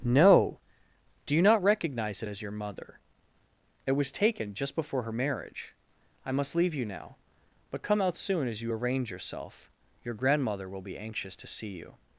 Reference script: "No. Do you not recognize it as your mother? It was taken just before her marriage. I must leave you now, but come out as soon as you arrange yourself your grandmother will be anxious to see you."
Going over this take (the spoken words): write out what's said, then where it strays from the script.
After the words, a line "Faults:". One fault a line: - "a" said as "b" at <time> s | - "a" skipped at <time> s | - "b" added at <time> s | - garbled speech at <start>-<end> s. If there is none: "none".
"No. Do you not recognize it as your mother? It was taken just before her marriage. I must leave you now, but come out soon as you arrange yourself your grandmother will be anxious to see you."
Faults:
- "as" skipped at 8.2 s